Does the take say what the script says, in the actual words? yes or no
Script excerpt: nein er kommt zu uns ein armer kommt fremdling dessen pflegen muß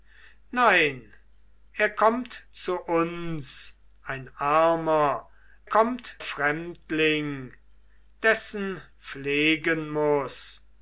yes